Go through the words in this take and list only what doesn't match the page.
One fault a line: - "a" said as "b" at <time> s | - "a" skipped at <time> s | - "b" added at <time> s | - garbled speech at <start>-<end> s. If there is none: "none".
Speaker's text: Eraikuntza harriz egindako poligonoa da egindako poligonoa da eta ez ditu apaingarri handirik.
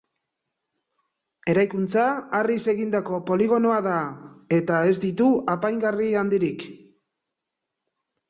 - "egindako poligonoa da" skipped at 4.0 s